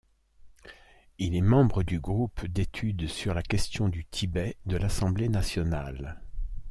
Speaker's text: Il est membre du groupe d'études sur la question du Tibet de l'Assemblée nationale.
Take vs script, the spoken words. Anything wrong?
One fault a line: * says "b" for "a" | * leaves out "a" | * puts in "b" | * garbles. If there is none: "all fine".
all fine